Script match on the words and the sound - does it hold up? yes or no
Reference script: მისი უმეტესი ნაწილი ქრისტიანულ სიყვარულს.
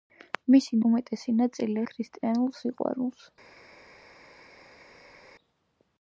yes